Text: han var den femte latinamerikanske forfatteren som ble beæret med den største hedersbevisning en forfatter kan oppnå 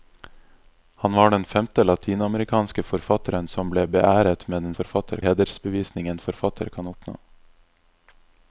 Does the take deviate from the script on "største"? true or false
true